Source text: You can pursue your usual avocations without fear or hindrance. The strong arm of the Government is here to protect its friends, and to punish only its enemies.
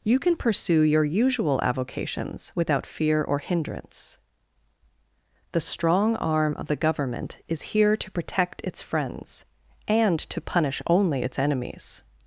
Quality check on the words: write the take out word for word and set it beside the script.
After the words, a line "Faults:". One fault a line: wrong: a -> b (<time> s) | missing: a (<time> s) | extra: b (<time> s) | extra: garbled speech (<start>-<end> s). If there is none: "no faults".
You can pursue your usual avocations without fear or hindrance. The strong arm of the Government is here to protect its friends, and to punish only its enemies.
Faults:
no faults